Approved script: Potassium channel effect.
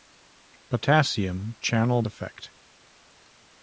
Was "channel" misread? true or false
false